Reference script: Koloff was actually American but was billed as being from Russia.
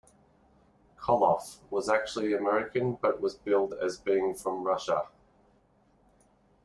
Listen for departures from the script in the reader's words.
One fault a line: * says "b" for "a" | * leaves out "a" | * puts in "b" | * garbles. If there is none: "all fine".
all fine